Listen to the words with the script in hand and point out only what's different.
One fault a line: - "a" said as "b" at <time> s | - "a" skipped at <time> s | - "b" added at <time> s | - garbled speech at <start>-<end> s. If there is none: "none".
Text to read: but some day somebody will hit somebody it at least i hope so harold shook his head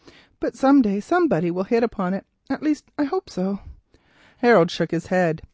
- "somebody" said as "upon" at 1.8 s